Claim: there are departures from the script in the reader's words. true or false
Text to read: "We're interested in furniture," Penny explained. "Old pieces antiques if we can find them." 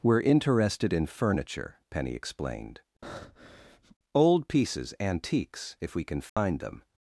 false